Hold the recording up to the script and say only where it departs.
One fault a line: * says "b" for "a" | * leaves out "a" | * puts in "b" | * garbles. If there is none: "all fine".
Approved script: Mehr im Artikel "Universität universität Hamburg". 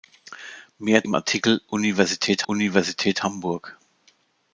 all fine